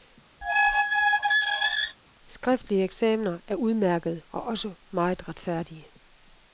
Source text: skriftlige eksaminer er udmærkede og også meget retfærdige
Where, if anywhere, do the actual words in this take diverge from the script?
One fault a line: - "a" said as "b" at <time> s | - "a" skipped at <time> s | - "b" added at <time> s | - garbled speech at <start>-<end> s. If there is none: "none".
none